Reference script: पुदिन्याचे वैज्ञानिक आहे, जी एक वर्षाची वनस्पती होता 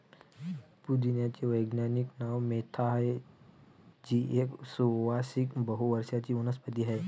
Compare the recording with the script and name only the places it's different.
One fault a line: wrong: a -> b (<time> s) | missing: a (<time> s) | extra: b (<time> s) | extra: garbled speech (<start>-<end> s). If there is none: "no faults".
extra: नाव मेंथा (2.2 s)
extra: सुवासिक बहु (4.7 s)
wrong: होता -> आहे (6.8 s)